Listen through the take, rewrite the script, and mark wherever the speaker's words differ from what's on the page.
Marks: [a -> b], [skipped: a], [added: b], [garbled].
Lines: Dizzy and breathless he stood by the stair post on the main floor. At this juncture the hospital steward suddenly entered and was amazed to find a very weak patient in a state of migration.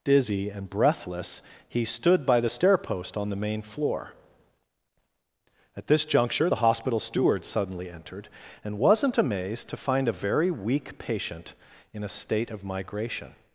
Dizzy and breathless he stood by the stair post on the main floor. At this juncture the hospital steward suddenly entered and [was -> wasn't] amazed to find a very weak patient in a state of migration.